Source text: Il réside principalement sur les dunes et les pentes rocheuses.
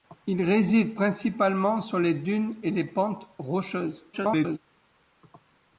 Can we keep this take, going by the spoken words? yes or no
no